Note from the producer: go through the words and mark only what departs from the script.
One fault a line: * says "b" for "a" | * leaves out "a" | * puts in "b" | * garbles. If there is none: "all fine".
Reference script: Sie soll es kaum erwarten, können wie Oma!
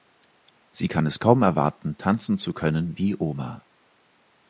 * says "kann" for "soll"
* puts in "tanzen zu"